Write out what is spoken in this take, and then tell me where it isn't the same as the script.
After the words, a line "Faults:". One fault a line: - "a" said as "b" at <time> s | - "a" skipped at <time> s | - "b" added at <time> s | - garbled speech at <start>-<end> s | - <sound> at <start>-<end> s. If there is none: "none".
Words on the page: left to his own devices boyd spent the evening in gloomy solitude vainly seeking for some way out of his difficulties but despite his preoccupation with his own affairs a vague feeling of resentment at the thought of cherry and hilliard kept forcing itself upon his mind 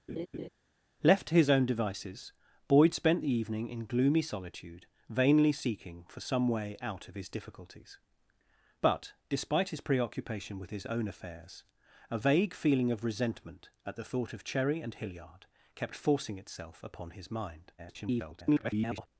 left to his own devices boyd spent the evening in gloomy solitude vainly seeking for some way out of his difficulties but despite his preoccupation with his own affairs a vague feeling of resentment at the thought of cherry and hilliard kept forcing itself upon his mind [garbled]
Faults:
- laugh at 0.1-0.5 s
- garbled speech at 17.8-19.1 s